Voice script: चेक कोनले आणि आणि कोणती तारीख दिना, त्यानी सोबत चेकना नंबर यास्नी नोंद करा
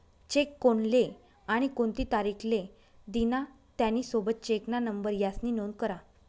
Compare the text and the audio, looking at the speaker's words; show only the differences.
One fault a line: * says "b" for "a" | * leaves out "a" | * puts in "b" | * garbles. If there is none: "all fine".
* leaves out "आणि"
* puts in "ले"